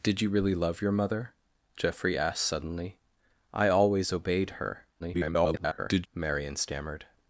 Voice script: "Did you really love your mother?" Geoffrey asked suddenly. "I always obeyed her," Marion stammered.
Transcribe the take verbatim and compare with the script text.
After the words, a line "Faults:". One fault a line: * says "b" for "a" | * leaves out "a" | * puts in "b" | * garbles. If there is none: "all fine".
"Did you really love your mother?" Geoffrey asked suddenly. "I always obeyed her," [garbled] Marion stammered.
Faults:
* garbles